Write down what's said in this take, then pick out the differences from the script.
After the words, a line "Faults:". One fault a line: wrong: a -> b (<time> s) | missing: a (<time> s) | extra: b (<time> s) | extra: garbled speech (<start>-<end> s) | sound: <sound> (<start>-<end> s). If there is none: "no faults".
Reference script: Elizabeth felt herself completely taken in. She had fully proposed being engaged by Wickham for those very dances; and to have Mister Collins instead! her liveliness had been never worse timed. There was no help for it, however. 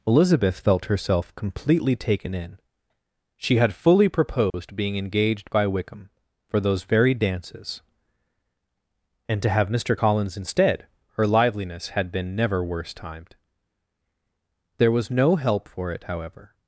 Elizabeth felt herself completely taken in. She had fully proposed being engaged by Wickham for those very dances; and to have Mister Collins instead! her liveliness had been never worse timed. There was no help for it, however.
Faults:
sound: dropout (4.5-4.5 s)